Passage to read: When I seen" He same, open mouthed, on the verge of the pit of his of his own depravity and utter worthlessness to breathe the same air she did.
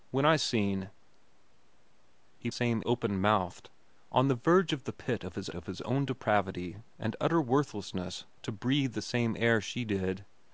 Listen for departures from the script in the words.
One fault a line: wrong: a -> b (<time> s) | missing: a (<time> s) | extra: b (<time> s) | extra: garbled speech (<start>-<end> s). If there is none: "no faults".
no faults